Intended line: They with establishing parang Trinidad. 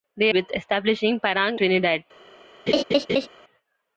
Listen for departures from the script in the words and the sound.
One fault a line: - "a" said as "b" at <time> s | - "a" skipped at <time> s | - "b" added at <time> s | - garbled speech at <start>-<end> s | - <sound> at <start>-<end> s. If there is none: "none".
- laugh at 2.7-3.3 s